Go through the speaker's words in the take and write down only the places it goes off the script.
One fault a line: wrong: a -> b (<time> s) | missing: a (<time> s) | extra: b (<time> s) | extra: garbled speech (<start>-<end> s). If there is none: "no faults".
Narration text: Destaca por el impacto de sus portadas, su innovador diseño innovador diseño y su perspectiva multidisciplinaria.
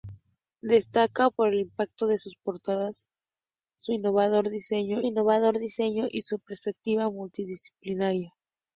no faults